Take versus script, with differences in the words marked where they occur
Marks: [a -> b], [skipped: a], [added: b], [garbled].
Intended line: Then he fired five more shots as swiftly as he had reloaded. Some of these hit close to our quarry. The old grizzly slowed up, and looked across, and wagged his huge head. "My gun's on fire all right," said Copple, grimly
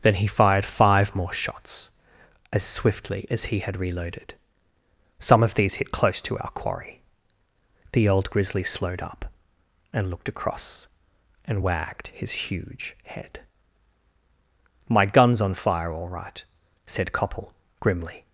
Then he fired five more shots as swiftly as he had reloaded. Some of these hit close to our quarry. The old grizzly slowed up, and looked across, and wagged his huge head. "My gun's on fire all right," said Copple, grimly